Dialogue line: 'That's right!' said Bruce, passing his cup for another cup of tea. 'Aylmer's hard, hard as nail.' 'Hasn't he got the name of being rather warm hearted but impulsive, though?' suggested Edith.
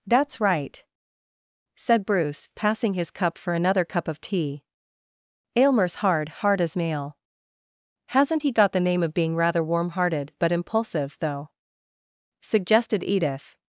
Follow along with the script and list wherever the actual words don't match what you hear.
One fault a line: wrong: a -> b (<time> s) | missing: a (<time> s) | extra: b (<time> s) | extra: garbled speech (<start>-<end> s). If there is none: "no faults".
no faults